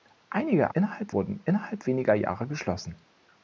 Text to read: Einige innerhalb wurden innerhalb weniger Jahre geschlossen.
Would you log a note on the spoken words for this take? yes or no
no